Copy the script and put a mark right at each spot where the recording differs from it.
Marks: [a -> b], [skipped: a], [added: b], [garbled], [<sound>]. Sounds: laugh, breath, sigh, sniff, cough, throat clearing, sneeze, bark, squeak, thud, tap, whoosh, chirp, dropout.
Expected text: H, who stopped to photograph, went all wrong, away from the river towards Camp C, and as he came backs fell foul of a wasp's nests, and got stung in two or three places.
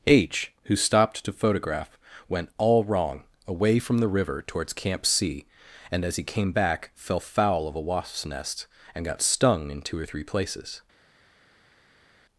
H, who stopped to photograph, went all wrong, away from the river towards Camp C, and as he came [backs -> back] fell foul of a wasp's [nests, -> nest] and got stung in two or three places.